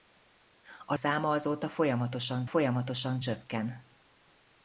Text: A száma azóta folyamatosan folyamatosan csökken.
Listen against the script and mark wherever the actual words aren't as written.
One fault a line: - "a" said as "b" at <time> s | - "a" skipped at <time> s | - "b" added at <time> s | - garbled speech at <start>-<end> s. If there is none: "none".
none